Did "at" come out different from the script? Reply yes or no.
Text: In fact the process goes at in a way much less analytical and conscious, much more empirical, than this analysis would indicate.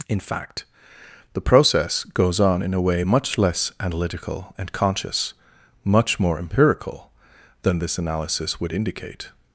yes